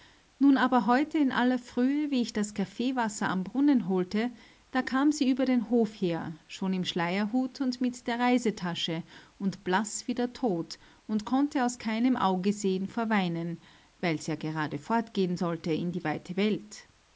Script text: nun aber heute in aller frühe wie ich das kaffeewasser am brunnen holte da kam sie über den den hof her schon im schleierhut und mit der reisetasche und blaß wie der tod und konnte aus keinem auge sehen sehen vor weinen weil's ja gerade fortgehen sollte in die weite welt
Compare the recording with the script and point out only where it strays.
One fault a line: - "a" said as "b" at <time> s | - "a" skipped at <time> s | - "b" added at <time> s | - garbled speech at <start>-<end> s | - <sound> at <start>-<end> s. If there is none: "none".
- "den" skipped at 5.7 s
- "sehen" skipped at 12.9 s